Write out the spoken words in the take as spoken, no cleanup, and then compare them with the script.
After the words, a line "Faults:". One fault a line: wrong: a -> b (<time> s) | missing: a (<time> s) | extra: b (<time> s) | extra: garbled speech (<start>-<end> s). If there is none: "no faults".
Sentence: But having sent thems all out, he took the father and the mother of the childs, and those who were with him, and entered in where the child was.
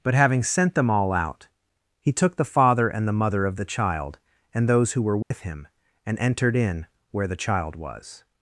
But having sent them all out, he took the father and the mother of the child, and those who were with him, and entered in where the child was.
Faults:
wrong: thems -> them (0.8 s)
wrong: childs -> child (3.7 s)